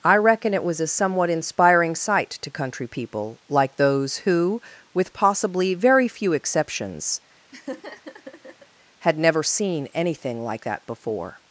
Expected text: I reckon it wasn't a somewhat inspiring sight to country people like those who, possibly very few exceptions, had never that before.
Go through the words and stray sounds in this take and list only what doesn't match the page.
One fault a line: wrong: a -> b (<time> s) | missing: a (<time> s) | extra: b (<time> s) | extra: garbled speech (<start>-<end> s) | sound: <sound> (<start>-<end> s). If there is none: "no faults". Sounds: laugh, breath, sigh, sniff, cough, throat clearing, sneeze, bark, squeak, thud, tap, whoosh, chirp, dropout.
wrong: wasn't -> was (0.6 s)
extra: with (5.0 s)
sound: laugh (7.5-8.7 s)
extra: seen anything like (9.4 s)